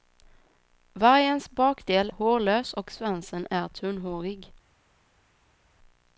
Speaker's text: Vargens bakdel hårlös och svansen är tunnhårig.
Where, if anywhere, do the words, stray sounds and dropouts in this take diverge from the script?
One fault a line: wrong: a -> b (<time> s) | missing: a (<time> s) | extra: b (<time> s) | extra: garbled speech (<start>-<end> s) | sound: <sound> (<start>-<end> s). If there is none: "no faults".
no faults